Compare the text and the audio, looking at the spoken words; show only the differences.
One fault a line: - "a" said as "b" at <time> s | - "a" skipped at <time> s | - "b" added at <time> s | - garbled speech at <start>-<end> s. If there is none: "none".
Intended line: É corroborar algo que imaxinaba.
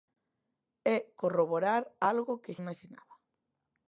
none